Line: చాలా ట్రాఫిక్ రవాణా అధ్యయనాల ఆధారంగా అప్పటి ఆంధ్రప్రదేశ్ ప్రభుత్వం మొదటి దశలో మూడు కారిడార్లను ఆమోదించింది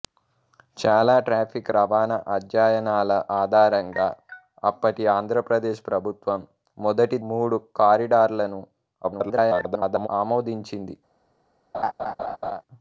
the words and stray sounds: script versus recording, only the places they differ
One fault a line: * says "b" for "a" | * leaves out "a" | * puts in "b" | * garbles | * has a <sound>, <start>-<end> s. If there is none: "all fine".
* leaves out "దశలో"
* garbles
* has a laugh, 11.7-12.6 s